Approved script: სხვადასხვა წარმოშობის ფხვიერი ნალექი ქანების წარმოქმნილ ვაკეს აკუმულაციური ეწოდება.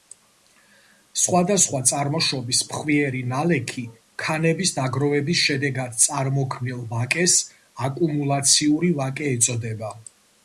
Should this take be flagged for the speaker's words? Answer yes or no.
yes